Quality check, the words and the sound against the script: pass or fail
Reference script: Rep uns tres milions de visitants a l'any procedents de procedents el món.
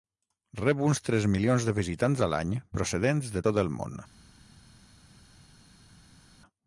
fail